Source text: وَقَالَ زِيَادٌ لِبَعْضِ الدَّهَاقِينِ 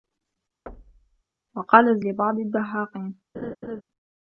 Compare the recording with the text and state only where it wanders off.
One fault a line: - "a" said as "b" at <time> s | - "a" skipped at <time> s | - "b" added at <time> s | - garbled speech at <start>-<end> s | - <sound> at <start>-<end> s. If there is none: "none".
- thud at 0.7-1.2 s
- "زِيَادٌ" skipped at 2.0 s
- laugh at 3.3-3.8 s